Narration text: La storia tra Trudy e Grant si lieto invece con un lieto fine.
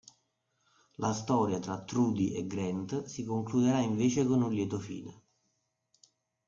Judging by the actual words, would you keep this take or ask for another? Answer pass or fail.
fail